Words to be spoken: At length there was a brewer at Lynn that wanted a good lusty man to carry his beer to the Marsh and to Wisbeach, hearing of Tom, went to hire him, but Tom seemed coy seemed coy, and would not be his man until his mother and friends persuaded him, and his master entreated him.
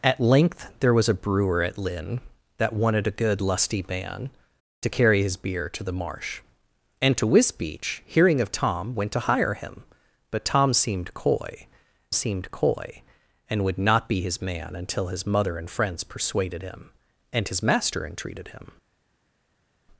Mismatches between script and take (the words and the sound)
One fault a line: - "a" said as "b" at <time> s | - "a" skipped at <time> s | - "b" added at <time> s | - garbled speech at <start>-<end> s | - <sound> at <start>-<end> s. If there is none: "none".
none